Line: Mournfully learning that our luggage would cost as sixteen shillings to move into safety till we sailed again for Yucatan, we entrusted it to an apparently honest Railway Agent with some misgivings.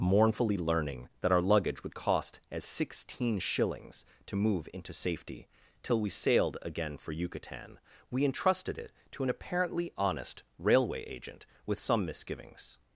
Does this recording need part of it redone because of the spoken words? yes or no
no